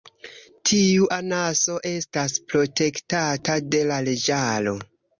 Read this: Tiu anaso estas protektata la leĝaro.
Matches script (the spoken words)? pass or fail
fail